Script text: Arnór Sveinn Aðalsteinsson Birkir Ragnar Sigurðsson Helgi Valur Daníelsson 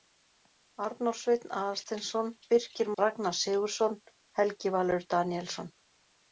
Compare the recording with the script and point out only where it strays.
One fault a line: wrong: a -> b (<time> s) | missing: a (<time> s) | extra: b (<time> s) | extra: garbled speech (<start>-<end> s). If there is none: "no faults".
no faults